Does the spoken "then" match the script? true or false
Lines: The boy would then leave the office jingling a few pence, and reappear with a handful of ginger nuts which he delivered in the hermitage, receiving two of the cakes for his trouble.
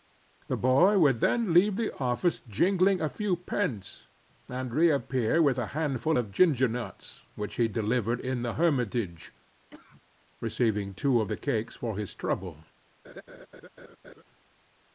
true